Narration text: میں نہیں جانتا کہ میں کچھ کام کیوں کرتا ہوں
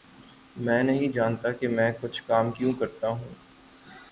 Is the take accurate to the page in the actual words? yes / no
yes